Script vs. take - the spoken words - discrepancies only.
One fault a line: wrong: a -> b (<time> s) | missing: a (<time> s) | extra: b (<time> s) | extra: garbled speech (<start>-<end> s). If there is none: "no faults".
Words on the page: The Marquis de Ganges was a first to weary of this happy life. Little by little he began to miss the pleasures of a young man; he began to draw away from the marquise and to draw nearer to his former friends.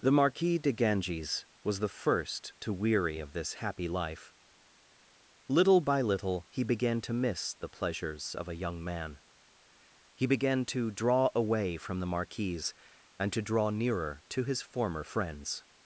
wrong: a -> the (1.8 s)